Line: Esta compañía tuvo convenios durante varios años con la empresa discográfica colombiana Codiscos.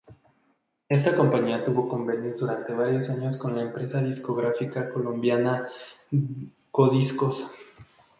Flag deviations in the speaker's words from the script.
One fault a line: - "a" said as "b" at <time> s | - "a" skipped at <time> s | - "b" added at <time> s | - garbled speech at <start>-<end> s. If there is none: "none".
none